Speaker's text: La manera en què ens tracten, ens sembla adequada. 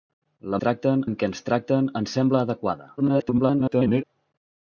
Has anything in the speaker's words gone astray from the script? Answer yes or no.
yes